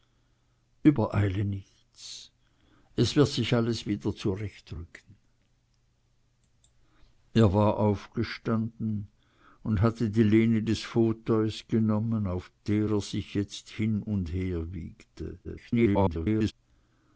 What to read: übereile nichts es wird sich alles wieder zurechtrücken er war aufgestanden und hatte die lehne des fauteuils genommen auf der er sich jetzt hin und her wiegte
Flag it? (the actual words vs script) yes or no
yes